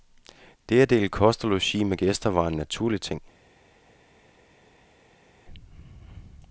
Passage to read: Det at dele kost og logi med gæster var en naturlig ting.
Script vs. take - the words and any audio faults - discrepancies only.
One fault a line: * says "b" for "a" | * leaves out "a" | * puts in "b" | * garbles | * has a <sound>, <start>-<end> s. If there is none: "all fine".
all fine